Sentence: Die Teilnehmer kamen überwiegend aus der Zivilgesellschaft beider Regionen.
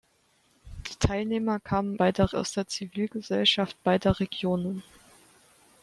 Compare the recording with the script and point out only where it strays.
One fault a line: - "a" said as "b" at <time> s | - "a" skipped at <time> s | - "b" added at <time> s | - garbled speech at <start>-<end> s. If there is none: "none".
- "überwiegend" said as "beider" at 2.0 s